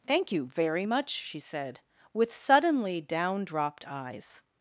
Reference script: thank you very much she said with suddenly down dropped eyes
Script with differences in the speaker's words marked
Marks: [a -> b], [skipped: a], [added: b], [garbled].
thank you very much she said with suddenly down dropped eyes